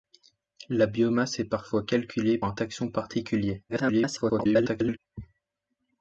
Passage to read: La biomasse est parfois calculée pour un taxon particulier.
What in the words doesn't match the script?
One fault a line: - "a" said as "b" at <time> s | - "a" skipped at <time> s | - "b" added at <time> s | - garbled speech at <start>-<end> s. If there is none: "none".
- "pour" skipped at 2.4 s
- garbled speech at 3.7-5.0 s